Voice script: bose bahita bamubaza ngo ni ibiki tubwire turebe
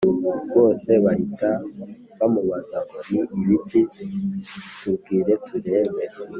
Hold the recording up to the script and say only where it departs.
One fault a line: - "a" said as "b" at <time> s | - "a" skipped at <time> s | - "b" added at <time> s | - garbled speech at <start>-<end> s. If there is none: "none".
none